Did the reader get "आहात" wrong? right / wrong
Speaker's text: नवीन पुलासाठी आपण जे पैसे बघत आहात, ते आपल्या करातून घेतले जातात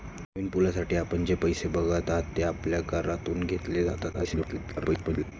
right